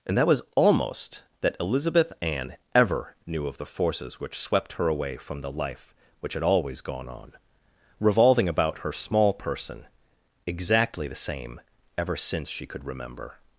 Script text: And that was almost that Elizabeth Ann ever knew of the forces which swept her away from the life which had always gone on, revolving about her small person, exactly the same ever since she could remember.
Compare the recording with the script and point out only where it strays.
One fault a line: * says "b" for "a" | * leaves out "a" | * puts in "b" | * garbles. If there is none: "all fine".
all fine